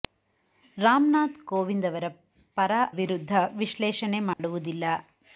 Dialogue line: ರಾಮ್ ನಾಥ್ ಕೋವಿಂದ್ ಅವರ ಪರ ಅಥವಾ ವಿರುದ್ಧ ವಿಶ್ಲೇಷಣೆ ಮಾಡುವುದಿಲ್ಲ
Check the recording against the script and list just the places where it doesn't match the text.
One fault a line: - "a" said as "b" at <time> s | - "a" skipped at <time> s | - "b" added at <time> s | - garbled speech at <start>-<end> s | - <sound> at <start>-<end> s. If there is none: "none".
- "ಅಥವಾ" skipped at 2.7 s
- dropout at 4.3-4.4 s